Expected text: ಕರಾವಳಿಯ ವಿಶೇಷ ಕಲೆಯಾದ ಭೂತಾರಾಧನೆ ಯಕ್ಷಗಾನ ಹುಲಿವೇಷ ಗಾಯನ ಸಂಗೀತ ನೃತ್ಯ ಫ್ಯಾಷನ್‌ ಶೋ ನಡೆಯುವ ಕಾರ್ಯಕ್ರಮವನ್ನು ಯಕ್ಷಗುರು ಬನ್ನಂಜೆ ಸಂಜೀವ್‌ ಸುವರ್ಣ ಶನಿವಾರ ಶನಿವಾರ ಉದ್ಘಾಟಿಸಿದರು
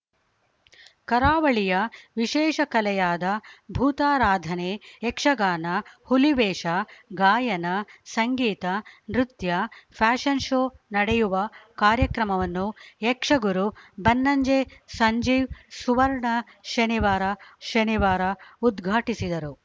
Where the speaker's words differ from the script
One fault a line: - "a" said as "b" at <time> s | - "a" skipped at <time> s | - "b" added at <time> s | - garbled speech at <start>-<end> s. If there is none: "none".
none